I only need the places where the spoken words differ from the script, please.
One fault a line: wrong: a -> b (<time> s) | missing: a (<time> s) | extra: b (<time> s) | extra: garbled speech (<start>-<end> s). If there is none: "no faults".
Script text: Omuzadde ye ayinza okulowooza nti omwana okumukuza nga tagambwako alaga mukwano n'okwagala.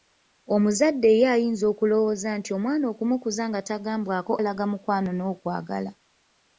no faults